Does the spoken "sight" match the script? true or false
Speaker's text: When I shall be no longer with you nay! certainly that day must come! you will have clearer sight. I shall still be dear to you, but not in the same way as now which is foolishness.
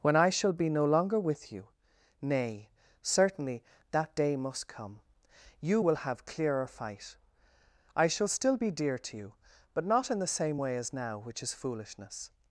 false